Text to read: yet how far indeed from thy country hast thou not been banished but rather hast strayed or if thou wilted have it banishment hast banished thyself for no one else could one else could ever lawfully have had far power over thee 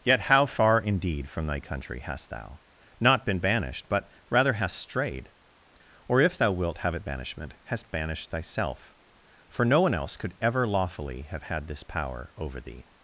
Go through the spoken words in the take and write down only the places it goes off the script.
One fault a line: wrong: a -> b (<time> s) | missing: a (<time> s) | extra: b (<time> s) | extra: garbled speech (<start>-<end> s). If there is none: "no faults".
wrong: wilted -> wilt (6.5 s)
missing: one else could (10.4 s)
wrong: far -> this (11.7 s)